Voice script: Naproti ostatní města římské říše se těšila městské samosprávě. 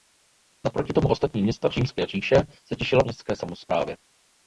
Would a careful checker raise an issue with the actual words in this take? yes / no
yes